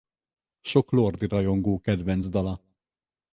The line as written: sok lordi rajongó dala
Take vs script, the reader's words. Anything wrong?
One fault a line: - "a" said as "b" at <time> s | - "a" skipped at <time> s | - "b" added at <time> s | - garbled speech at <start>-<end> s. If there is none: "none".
- "kedvenc" added at 1.8 s